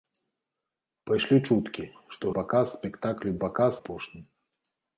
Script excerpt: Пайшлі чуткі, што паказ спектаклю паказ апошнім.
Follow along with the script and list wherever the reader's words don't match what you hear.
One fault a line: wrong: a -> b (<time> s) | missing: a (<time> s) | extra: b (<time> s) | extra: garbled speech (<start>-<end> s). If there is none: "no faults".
no faults